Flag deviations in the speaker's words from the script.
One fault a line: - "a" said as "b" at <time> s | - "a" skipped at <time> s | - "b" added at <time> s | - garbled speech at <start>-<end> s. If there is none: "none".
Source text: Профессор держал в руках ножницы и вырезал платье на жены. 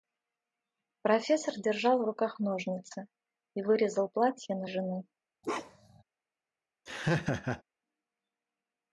none